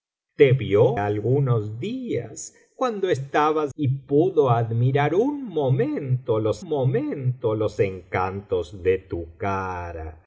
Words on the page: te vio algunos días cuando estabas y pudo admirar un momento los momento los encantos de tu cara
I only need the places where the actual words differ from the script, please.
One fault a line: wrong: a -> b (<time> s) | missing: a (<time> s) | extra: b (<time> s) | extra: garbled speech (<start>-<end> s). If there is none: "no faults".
no faults